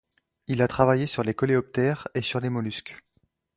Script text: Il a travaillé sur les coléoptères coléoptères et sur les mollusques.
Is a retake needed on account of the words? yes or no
yes